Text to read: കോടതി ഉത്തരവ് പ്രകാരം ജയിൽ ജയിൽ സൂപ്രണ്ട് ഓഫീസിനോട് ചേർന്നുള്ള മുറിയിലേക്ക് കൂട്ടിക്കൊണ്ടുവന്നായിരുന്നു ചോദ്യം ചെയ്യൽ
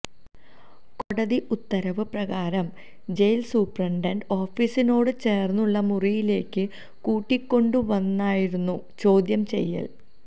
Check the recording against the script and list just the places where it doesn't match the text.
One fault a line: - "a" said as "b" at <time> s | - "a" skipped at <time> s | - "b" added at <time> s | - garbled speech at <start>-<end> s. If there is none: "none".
- "ജയിൽ" skipped at 3.4 s